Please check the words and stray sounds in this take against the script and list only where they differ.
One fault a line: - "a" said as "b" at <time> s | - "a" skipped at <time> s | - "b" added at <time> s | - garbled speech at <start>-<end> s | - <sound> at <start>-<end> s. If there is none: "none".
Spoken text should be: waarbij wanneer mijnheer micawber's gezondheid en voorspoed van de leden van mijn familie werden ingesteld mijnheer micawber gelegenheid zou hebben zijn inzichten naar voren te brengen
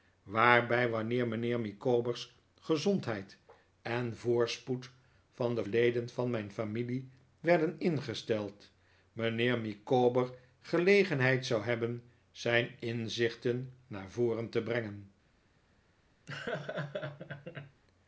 - laugh at 16.3-17.8 s